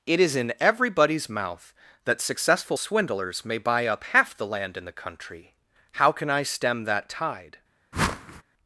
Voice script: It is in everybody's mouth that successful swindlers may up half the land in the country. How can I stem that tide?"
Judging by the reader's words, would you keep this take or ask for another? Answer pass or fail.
fail